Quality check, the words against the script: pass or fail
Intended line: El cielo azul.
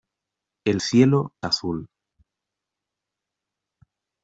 pass